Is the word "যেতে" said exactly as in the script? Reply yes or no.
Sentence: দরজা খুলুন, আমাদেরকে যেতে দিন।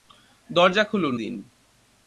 no